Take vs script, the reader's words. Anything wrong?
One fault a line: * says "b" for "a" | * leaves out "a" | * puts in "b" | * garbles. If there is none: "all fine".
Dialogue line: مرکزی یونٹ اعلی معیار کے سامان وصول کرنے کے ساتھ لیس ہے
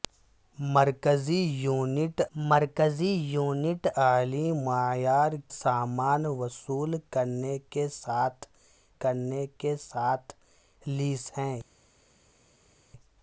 * puts in "مرکزی یونٹ"
* leaves out "کے"
* puts in "کرنے کے ساتھ"